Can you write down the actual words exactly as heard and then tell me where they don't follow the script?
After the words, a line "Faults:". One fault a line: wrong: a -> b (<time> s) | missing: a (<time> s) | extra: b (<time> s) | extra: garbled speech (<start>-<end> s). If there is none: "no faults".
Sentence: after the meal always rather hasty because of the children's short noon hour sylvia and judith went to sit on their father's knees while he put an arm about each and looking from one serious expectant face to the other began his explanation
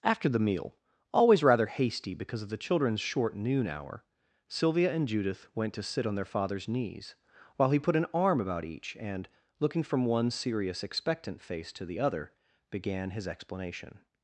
after the meal always rather hasty because of the children's short noon hour sylvia and judith went to sit on their father's knees while he put an arm about each and looking from one serious expectant face to the other began his explanation
Faults:
no faults